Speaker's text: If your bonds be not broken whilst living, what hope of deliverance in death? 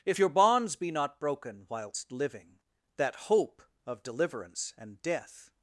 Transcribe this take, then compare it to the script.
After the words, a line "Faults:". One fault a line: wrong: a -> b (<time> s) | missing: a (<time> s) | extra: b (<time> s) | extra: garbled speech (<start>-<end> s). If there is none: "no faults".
If your bonds be not broken whilst living, that hope of deliverance and death?
Faults:
wrong: what -> that (2.9 s)
wrong: in -> and (4.8 s)